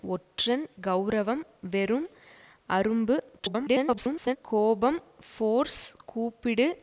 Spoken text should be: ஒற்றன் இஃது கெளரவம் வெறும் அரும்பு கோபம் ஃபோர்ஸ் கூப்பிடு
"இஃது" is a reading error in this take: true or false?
true